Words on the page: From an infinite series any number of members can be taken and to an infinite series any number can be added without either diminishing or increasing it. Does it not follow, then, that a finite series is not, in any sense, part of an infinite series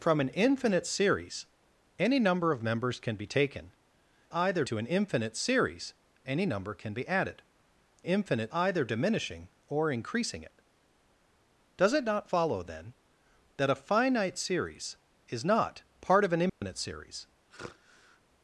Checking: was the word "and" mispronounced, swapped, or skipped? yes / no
yes